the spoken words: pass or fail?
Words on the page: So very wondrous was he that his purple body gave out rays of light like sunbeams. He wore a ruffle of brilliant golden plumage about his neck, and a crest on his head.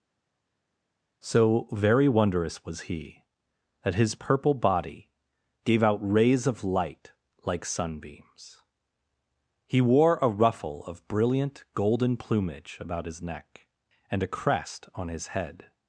pass